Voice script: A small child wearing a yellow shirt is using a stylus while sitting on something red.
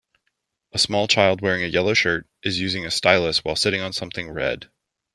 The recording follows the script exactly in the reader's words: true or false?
true